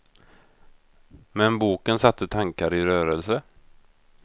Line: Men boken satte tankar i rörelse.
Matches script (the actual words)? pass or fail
pass